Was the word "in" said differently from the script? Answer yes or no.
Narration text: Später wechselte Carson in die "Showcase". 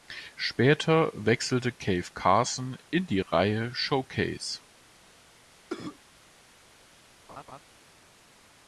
no